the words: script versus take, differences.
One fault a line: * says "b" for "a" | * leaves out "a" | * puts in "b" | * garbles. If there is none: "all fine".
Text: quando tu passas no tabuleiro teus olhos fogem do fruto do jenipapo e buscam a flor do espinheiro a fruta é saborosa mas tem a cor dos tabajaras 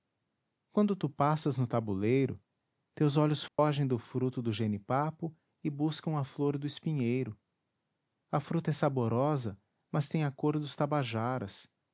all fine